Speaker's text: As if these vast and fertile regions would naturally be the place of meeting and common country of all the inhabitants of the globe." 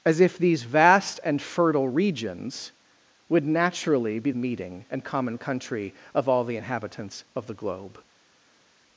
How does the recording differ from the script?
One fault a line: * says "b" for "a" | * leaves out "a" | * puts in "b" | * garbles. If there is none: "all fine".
* leaves out "the place of"